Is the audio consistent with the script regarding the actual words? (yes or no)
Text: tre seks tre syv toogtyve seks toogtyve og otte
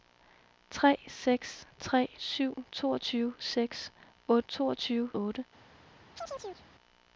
yes